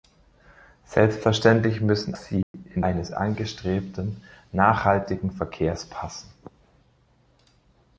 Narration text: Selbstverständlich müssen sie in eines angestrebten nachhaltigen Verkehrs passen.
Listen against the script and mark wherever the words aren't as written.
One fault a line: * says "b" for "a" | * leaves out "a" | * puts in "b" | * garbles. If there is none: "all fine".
all fine